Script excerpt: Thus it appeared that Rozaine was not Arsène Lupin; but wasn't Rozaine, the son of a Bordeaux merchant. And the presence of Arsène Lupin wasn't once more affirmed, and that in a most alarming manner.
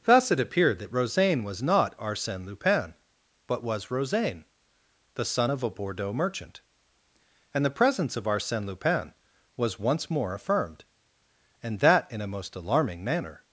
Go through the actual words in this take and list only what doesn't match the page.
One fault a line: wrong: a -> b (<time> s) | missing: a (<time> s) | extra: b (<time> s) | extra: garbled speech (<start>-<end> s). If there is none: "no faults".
wrong: wasn't -> was (3.6 s)
wrong: wasn't -> was (9.5 s)